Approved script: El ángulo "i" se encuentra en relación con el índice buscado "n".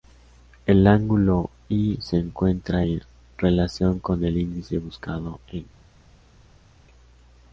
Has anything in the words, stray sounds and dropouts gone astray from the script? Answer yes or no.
no